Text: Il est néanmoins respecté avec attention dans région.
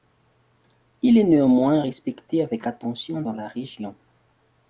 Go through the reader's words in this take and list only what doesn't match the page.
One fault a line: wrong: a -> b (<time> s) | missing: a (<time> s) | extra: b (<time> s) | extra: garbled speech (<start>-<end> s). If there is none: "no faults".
extra: la (3.3 s)